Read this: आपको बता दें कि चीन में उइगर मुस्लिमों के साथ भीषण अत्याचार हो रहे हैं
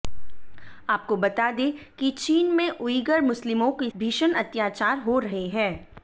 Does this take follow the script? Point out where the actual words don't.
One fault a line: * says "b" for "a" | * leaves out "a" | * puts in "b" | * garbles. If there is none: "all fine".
* leaves out "साथ"